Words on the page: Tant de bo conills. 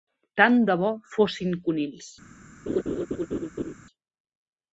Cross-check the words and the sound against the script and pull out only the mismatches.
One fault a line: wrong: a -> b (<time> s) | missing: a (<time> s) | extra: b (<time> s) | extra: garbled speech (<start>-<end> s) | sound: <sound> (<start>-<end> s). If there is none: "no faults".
extra: fossin (1.1 s)
sound: laugh (2.7-3.7 s)